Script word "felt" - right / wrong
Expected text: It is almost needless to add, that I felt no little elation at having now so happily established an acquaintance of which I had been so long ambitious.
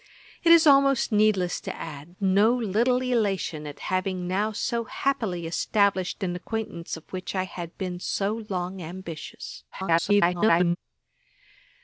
wrong